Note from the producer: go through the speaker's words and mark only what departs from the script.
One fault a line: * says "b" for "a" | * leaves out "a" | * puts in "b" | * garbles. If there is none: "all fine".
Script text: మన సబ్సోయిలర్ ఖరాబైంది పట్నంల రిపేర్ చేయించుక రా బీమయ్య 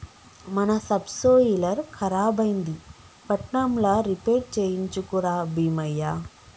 all fine